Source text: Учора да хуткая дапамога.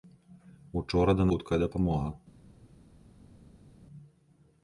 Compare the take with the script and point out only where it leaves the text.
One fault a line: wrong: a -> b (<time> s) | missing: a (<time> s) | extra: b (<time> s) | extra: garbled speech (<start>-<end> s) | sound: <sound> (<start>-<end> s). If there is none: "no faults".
no faults